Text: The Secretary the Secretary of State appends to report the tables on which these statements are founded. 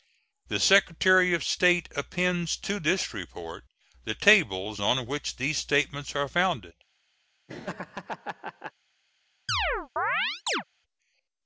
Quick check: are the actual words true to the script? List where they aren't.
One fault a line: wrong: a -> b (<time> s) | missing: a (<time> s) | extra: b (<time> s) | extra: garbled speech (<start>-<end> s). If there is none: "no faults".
missing: the Secretary (1.3 s)
extra: this (2.8 s)